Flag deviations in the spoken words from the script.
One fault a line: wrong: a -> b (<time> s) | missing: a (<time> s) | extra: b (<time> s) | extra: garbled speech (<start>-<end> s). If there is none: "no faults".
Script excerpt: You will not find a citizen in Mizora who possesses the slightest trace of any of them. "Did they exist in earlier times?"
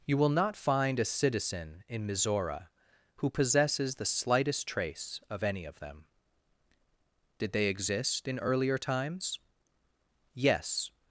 extra: Yes (10.3 s)